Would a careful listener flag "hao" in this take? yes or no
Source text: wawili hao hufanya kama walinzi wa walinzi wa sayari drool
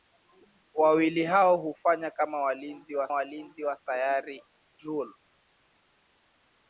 no